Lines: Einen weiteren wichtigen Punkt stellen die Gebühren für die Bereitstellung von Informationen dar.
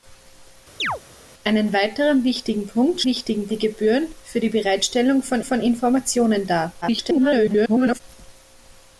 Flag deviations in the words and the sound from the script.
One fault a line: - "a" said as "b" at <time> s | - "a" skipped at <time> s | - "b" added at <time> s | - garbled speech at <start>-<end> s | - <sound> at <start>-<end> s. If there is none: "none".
- chirp at 0.8-1.0 s
- "stellen" said as "wichtigen" at 3.0 s
- "von" added at 5.4 s
- garbled speech at 6.8-8.0 s